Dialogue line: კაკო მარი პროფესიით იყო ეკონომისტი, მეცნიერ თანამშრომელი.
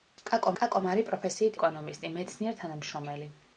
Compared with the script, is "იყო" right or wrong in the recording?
wrong